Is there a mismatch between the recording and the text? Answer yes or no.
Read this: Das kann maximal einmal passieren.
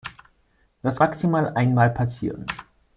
yes